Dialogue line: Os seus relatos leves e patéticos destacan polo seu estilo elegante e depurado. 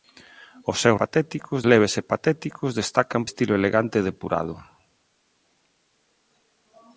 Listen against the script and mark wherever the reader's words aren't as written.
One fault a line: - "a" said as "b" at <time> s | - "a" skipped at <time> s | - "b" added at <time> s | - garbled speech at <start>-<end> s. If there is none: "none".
- "relatos" said as "patéticos" at 1.0 s
- "polo seu" skipped at 3.2 s